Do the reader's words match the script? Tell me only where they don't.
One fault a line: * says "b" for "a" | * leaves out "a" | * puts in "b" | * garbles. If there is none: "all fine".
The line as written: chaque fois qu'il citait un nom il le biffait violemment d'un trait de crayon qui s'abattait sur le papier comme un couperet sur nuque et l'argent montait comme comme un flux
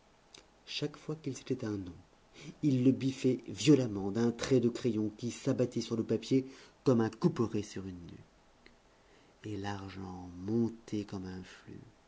* puts in "une"
* leaves out "comme"